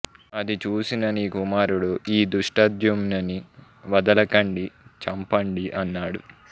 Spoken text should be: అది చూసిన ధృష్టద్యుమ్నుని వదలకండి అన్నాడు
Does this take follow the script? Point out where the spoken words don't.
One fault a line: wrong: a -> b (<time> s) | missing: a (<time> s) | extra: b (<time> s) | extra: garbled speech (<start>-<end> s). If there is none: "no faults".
extra: నీ కుమారుడు ఈ (1.1 s)
extra: చంపండి (5.0 s)